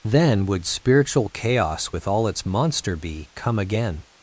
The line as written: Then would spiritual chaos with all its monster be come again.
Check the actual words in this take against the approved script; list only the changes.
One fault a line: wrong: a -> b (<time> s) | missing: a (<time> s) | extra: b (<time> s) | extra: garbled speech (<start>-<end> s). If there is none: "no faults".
no faults